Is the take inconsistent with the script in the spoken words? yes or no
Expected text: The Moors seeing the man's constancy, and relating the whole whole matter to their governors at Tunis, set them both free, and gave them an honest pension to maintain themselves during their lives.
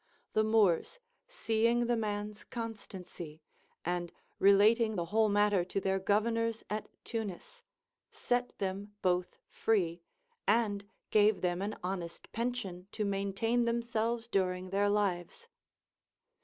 yes